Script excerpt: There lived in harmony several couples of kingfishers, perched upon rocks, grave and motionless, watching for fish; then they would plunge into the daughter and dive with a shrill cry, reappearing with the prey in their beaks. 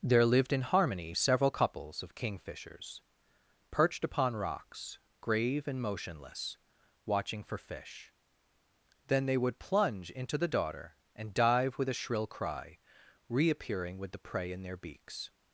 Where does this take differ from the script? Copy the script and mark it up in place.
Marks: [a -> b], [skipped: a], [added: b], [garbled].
There lived in harmony several couples of kingfishers, perched upon rocks, grave and motionless, watching for fish; then they would plunge into the daughter and dive with a shrill cry, reappearing with the prey in their beaks.